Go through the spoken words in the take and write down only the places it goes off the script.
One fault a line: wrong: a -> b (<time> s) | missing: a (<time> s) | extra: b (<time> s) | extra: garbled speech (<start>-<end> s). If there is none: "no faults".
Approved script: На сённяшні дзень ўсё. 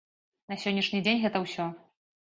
extra: гэта (1.2 s)